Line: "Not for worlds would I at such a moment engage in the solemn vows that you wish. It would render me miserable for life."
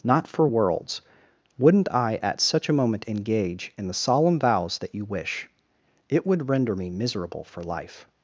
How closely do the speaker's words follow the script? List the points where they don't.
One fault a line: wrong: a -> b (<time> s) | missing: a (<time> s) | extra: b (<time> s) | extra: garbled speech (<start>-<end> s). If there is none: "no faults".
wrong: would -> wouldn't (1.6 s)